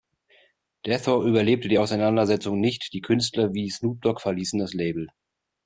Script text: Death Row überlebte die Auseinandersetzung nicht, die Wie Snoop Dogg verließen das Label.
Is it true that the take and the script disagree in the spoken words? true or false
true